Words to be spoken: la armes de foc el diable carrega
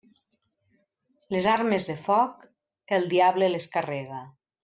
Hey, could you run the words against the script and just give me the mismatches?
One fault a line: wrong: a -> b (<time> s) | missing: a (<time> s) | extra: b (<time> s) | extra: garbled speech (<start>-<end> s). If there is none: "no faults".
wrong: la -> les (1.4 s)
extra: les (3.6 s)